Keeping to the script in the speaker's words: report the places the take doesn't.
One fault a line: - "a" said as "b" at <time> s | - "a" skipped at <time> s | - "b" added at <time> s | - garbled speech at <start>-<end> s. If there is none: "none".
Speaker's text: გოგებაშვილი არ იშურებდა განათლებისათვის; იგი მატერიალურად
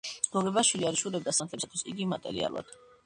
none